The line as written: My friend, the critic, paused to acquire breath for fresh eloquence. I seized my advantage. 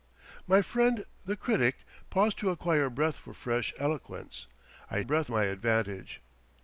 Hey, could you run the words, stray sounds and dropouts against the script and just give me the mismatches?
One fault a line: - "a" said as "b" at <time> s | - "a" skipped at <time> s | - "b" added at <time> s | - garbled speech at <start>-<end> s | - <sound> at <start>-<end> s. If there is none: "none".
- "seized" said as "breath" at 5.0 s